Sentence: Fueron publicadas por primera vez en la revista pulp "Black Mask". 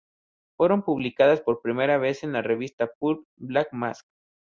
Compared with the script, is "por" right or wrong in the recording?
right